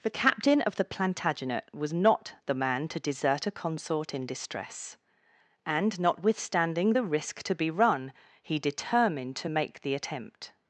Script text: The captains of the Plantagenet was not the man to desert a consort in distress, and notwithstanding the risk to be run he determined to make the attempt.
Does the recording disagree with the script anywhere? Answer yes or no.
yes